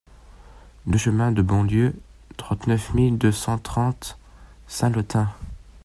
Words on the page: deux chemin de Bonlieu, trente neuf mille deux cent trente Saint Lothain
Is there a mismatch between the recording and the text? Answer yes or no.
no